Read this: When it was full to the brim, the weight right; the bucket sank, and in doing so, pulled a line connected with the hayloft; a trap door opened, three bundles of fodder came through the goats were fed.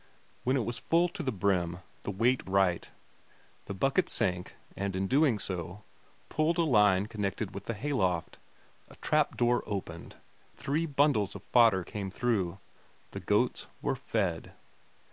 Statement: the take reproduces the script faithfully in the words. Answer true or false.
true